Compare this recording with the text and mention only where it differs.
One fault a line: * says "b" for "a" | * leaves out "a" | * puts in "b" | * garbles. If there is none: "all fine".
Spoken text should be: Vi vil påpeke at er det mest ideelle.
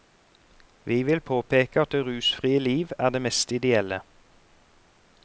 * puts in "det rusfrie liv"